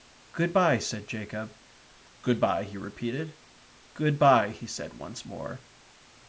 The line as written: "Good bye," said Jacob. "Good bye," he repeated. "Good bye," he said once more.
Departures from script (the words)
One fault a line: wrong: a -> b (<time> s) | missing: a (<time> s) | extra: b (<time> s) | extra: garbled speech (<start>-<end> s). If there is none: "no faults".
no faults